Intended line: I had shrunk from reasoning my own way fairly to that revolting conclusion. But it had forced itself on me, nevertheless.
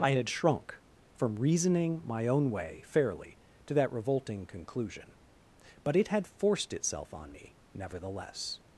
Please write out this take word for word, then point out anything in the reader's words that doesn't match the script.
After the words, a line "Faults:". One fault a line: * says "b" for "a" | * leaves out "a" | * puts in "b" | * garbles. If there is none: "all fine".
I had shrunk from reasoning my own way fairly to that revolting conclusion. But it had forced itself on me, nevertheless.
Faults:
all fine